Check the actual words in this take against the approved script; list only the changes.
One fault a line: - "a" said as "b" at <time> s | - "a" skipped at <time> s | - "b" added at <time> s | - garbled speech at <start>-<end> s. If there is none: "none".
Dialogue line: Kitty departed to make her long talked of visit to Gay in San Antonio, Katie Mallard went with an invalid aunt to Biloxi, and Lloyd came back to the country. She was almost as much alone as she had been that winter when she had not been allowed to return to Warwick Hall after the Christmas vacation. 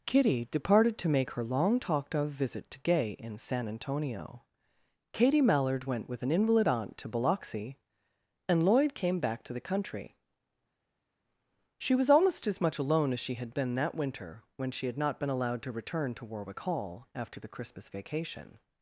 none